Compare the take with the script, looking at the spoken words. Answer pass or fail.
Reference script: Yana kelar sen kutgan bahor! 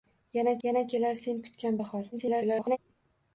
fail